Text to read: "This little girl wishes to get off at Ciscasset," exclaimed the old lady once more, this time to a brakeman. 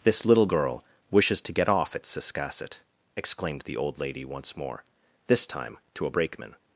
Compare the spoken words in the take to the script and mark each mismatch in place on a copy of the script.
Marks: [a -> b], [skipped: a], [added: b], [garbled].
"This little girl wishes to get off at Ciscasset," exclaimed the old lady once more, this time to a brakeman.